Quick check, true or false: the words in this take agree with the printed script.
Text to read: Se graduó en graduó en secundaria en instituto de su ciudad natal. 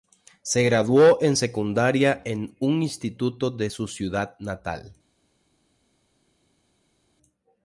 false